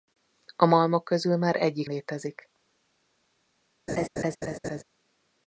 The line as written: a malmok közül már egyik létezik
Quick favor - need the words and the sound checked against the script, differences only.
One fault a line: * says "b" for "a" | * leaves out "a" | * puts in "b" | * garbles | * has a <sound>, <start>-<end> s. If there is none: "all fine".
* has a laugh, 3.9-4.8 s